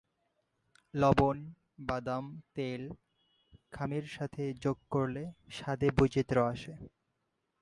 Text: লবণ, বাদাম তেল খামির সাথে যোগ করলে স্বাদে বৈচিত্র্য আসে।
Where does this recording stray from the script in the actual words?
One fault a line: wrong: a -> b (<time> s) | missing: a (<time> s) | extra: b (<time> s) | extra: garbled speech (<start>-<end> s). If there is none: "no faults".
no faults